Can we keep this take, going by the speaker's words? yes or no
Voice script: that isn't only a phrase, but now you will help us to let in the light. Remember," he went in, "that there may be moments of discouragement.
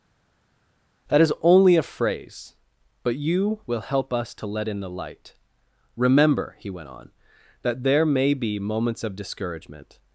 no